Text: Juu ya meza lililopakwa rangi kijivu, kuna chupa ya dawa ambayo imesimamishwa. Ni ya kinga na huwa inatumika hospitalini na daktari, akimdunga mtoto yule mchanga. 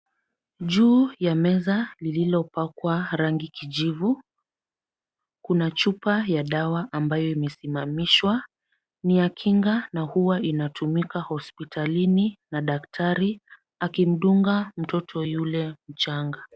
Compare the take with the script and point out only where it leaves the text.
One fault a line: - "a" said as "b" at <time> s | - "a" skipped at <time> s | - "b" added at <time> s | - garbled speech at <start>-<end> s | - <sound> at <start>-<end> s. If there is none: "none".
none